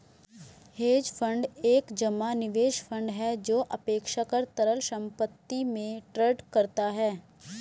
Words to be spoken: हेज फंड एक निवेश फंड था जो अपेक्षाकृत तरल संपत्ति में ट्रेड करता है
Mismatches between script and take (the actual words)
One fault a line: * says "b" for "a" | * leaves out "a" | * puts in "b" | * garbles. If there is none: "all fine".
* puts in "जमा"
* says "है" for "था"